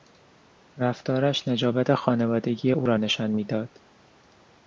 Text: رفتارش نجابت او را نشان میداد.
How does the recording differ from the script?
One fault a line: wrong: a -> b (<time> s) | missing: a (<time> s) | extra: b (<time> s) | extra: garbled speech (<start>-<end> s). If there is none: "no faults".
extra: خانوادگی (1.9 s)